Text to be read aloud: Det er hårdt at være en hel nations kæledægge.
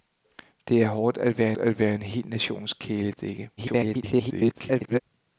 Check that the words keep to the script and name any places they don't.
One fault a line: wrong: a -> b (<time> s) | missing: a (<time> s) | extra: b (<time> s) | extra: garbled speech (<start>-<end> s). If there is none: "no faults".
extra: at være (1.6 s)
extra: garbled speech (3.6-5.0 s)